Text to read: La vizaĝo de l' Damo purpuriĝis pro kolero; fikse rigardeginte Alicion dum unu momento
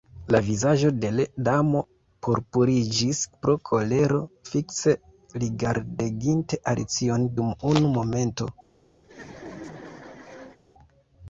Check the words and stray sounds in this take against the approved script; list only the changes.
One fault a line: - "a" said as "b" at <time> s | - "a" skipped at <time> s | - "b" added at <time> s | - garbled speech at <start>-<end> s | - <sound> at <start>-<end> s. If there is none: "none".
- laugh at 9.0-10.6 s